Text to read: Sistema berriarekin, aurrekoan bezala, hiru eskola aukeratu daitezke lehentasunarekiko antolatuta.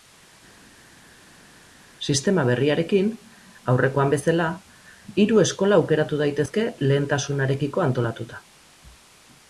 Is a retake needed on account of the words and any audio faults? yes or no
no